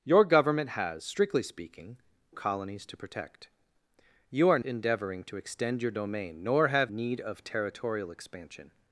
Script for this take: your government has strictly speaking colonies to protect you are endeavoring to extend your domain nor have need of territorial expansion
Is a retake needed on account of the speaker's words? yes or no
no